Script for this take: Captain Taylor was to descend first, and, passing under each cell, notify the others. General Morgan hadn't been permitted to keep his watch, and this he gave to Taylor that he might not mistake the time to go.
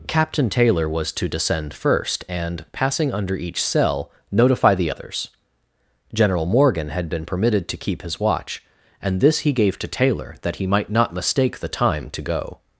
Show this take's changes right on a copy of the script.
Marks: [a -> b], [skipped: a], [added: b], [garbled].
Captain Taylor was to descend first, and, passing under each cell, notify the others. General Morgan [hadn't -> had] been permitted to keep his watch, and this he gave to Taylor that he might not mistake the time to go.